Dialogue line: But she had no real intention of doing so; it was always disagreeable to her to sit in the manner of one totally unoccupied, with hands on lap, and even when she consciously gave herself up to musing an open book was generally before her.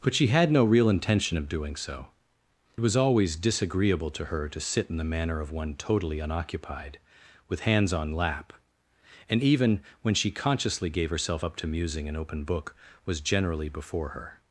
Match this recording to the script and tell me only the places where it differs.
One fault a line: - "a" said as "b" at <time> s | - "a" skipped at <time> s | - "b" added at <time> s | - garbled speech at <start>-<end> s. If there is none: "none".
- "it" skipped at 2.1 s